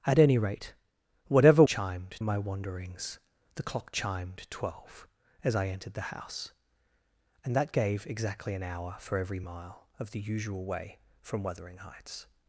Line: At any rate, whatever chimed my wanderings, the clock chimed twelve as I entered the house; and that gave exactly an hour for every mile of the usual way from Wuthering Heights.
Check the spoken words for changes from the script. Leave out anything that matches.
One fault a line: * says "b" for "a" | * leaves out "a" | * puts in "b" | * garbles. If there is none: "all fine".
all fine